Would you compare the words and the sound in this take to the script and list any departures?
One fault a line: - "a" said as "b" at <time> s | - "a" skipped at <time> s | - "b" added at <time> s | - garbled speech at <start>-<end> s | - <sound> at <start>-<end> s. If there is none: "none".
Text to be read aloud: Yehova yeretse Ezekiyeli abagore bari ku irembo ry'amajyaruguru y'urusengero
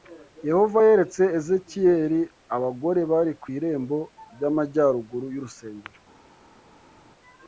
none